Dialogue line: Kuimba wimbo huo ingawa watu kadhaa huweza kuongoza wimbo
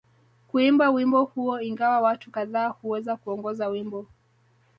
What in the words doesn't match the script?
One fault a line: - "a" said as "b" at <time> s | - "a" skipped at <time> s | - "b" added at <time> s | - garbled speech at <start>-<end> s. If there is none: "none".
none